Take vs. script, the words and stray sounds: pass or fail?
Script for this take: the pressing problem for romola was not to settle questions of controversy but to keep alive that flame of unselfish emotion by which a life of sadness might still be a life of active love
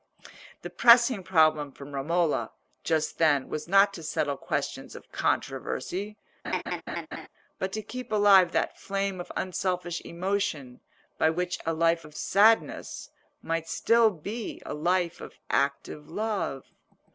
fail